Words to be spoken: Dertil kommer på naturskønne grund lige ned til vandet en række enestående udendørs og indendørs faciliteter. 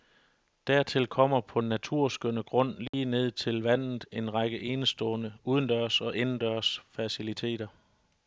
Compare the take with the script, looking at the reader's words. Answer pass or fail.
pass